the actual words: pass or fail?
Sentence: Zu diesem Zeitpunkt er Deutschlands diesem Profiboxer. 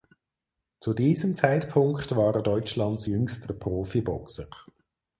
fail